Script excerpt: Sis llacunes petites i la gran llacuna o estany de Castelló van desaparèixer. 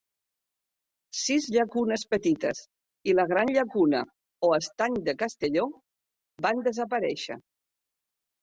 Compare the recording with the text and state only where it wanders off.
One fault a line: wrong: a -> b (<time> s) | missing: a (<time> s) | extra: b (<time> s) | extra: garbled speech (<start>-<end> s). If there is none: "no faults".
no faults